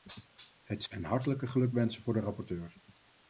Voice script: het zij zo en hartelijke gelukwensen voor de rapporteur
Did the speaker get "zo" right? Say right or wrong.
wrong